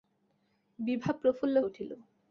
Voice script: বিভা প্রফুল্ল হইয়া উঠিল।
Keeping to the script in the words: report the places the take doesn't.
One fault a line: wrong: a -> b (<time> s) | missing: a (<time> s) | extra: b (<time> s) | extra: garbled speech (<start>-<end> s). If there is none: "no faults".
missing: হইয়া (1.6 s)